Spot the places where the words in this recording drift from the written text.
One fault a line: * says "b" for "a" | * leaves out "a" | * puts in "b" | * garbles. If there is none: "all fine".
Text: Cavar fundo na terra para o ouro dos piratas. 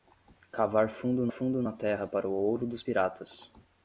* puts in "fundo"